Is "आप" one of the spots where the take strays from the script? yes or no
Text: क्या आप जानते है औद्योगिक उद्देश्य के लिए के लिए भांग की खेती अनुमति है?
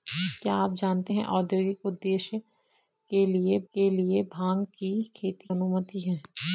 no